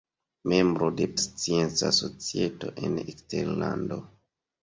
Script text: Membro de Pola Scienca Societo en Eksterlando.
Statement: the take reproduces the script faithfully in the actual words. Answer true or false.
false